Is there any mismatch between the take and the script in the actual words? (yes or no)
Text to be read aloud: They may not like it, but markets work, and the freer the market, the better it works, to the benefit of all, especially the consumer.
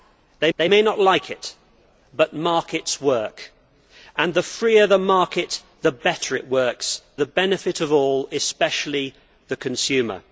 yes